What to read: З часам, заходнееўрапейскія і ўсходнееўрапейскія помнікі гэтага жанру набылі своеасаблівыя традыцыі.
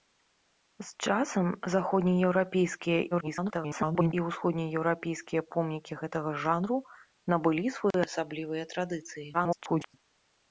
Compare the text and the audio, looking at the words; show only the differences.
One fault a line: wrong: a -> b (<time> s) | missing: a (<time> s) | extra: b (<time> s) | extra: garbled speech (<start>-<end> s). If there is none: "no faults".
extra: garbled speech (3.1-4.1 s)
extra: garbled speech (9.3-9.9 s)